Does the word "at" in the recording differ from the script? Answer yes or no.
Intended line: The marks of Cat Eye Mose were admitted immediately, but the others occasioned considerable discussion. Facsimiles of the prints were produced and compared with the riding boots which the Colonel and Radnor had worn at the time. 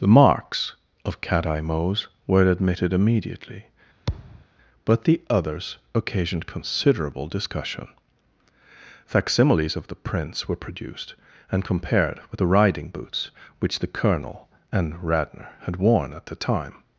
no